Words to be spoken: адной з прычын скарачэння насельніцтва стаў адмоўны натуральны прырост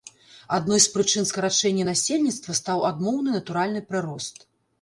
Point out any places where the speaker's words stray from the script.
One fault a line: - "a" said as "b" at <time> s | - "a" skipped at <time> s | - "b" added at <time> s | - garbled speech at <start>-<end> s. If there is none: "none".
none